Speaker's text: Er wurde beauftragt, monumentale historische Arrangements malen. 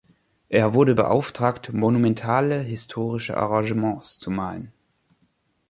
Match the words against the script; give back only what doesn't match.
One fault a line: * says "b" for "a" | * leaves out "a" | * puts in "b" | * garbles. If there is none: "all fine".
* puts in "zu"